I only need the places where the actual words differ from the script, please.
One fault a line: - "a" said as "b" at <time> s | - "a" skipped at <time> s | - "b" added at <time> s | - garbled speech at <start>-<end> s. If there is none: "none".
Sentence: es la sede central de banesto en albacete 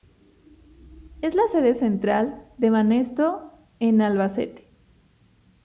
none